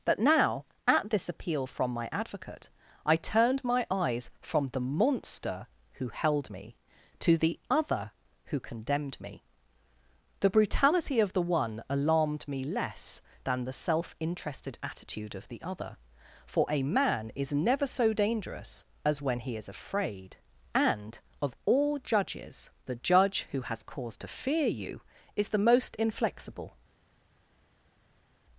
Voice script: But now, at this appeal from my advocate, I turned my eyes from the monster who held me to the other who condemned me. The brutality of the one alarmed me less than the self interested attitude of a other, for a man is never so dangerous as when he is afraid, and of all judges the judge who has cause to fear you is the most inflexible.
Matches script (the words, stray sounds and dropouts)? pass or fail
fail